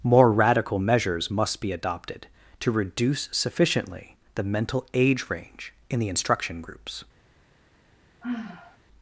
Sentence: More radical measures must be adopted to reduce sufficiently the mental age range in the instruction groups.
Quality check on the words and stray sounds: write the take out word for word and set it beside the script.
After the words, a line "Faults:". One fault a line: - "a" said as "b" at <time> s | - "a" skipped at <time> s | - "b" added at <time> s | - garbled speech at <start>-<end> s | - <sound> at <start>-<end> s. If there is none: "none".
More radical measures must be adopted to reduce sufficiently the mental age range in the instruction groups.
Faults:
- sigh at 8.2-8.8 s